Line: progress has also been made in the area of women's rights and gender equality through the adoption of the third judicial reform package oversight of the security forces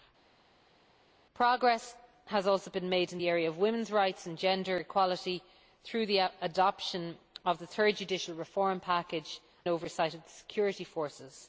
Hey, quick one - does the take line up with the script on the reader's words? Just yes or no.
yes